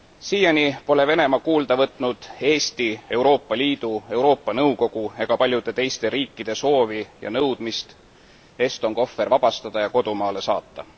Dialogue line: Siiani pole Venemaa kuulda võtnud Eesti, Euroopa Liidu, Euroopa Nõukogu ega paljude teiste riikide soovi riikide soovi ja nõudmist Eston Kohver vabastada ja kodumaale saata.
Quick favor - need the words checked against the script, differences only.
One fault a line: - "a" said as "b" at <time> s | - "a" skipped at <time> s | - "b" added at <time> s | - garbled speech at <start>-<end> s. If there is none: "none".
- "riikide soovi" skipped at 7.0 s